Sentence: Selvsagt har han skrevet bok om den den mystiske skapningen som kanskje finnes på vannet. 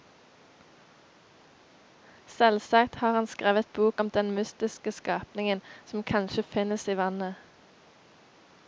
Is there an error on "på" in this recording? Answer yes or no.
yes